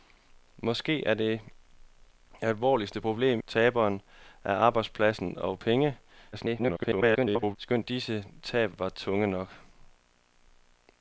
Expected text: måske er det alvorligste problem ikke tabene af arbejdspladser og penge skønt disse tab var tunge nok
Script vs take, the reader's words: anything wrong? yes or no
yes